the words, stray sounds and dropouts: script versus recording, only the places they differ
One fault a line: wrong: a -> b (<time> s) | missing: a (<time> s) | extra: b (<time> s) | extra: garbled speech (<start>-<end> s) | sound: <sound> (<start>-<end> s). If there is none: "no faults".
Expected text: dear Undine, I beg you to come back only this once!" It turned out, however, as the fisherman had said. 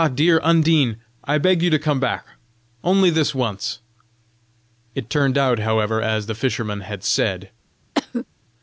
sound: cough (7.9-8.3 s)